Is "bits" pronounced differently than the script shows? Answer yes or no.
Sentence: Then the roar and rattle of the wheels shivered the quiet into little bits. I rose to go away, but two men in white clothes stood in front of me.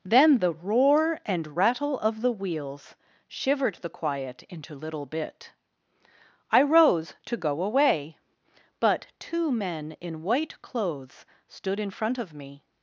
yes